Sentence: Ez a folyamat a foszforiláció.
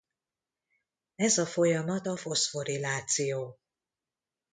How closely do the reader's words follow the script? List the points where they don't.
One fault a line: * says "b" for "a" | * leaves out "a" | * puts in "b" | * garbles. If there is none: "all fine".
all fine